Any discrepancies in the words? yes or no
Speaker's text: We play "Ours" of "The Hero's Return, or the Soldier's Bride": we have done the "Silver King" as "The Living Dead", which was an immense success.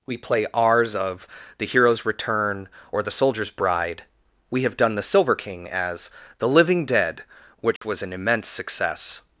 no